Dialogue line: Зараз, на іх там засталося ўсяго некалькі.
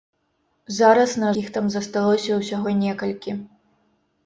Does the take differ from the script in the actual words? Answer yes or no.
no